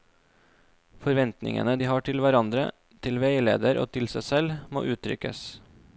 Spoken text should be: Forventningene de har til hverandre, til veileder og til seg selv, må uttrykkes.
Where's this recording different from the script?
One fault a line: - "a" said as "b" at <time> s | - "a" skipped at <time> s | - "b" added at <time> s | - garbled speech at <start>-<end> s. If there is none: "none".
none